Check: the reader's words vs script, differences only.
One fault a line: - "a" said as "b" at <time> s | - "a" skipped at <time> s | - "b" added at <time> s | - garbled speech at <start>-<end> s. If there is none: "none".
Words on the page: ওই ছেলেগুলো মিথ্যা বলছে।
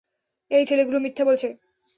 - "ওই" said as "এই" at 0.5 s